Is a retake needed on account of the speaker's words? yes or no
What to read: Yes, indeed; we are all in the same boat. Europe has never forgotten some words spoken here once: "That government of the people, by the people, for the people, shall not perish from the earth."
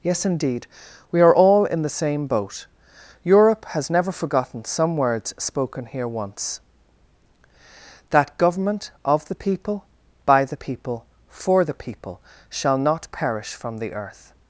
no